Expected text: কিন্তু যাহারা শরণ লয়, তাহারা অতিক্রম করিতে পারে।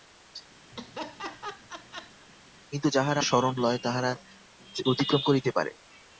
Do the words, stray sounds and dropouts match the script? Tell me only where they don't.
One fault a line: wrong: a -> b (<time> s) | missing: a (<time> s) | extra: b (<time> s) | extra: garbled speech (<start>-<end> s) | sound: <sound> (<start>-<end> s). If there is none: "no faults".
sound: laugh (0.7-2.3 s)